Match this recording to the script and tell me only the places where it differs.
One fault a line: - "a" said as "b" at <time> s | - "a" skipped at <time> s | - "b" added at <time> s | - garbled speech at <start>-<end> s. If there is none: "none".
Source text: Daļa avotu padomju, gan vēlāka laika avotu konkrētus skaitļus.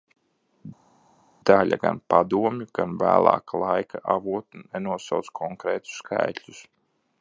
- "avotu" said as "gan" at 1.8 s
- "nenosauc" added at 4.6 s